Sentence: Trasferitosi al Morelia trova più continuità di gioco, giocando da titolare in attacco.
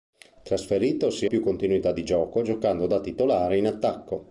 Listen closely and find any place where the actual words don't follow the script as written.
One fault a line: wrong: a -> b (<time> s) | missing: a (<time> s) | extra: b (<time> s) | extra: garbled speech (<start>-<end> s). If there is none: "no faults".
missing: al Morelia trova (1.3 s)